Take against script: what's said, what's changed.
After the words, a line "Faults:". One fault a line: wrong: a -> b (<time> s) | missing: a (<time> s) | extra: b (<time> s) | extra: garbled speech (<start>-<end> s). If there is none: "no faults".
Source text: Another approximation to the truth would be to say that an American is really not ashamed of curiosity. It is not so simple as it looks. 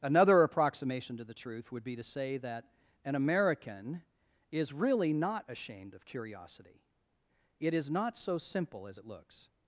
Another approximation to the truth would be to say that an American is really not ashamed of curiosity. It is not so simple as it looks.
Faults:
no faults